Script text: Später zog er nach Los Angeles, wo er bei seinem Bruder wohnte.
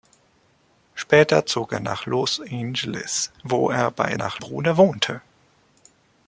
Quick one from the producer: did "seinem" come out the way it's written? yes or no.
no